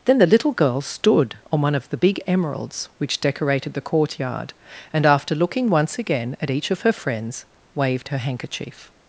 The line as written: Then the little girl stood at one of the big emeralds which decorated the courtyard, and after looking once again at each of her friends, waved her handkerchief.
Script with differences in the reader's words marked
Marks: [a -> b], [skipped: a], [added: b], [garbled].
Then the little girl stood [at -> on] one of the big emeralds which decorated the courtyard, and after looking once again at each of her friends, waved her handkerchief.